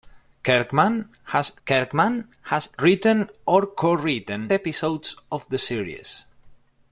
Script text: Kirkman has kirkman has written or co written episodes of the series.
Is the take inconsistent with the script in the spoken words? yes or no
no